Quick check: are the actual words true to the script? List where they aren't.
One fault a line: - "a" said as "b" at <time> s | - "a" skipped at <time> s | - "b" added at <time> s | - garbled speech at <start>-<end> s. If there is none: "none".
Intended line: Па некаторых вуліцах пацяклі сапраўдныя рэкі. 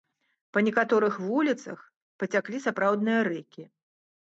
none